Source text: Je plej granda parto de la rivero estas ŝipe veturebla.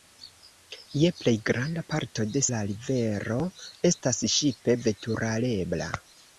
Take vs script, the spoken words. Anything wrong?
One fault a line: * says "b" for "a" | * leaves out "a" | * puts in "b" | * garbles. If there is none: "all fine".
all fine